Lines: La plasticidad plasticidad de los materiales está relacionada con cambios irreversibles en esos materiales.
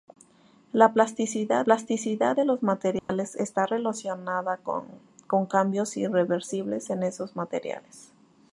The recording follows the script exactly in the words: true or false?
true